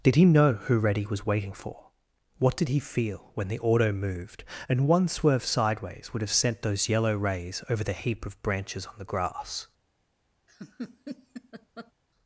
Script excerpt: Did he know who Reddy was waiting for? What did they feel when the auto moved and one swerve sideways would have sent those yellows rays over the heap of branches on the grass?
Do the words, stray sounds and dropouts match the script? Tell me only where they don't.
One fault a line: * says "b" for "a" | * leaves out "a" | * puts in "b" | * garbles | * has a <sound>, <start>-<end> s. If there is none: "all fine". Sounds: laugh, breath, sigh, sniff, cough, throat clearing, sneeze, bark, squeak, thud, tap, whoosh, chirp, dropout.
* says "he" for "they"
* says "yellow" for "yellows"
* has a laugh, 10.5-11.9 s